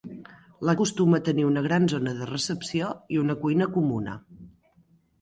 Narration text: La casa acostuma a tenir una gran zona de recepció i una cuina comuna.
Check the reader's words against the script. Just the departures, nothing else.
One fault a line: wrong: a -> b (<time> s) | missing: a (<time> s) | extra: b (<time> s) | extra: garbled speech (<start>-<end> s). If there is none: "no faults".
missing: casa (0.7 s)